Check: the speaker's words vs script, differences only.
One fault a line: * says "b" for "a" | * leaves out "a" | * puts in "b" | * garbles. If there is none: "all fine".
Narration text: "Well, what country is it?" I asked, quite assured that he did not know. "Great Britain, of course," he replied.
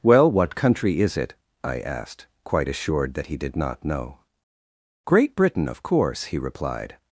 all fine